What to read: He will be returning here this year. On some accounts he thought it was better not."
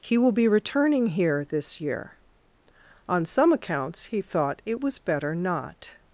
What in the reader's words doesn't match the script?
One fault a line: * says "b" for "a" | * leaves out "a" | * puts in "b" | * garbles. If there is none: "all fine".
all fine